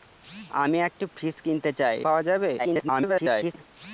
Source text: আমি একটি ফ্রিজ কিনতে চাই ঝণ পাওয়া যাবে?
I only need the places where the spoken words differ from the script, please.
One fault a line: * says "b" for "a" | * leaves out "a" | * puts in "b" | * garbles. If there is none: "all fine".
* leaves out "ঝণ"
* garbles